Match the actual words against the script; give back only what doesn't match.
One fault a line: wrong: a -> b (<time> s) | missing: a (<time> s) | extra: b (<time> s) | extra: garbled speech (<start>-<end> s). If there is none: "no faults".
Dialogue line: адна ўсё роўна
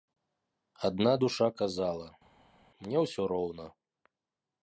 extra: душа казала мне (1.2 s)